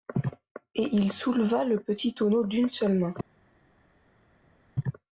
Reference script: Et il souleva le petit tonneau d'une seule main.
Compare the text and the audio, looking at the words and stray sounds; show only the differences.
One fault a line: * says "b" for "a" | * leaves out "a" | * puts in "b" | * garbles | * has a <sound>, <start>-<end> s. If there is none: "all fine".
all fine